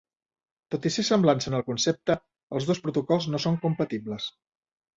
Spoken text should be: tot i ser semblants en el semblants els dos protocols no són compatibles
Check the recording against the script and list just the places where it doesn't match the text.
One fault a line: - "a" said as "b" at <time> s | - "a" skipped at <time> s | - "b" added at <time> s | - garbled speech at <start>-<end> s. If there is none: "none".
- "semblants" said as "concepte" at 1.7 s